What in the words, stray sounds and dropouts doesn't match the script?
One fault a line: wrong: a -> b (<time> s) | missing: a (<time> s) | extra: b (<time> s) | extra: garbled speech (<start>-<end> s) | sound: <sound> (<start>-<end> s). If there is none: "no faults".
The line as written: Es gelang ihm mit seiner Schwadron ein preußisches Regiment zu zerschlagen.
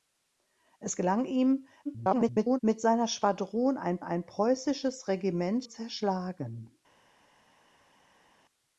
extra: garbled speech (1.9-2.6 s)
extra: ein (4.0 s)
missing: zu (5.6 s)